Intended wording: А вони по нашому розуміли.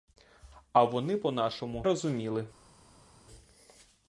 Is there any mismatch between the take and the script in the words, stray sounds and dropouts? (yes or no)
no